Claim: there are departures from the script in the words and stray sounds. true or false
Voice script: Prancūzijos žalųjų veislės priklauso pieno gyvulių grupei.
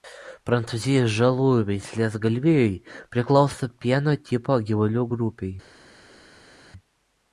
true